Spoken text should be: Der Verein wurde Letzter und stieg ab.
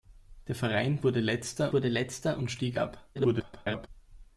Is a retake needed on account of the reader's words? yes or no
yes